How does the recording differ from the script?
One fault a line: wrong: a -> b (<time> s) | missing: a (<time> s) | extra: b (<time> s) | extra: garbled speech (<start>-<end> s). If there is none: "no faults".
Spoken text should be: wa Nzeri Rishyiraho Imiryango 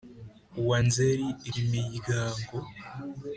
missing: Rishyiraho (1.3 s)